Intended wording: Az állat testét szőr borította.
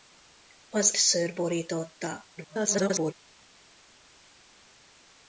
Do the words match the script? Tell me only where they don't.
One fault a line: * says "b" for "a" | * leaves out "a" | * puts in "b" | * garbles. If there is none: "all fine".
* leaves out "állat testét"
* garbles